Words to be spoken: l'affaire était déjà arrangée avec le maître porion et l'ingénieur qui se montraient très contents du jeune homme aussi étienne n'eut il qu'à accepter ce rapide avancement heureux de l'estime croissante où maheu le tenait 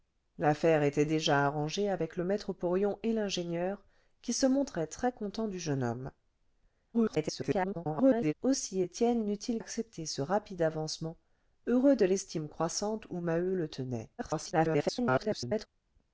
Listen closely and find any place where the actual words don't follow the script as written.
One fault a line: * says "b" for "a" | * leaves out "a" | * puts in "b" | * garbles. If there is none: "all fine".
* garbles
* leaves out "qu'à"
* garbles